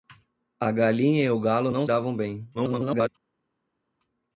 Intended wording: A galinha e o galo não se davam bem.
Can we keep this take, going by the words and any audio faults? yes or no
no